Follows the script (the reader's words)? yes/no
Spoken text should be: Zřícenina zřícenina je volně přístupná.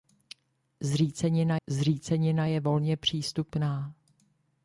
yes